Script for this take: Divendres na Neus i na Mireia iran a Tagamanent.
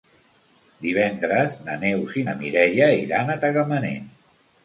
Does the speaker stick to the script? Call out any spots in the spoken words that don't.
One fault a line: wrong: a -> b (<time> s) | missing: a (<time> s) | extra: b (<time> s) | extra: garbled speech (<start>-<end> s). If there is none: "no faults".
no faults